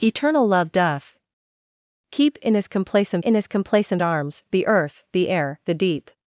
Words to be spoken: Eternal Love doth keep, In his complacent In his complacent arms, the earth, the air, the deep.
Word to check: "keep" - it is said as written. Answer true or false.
true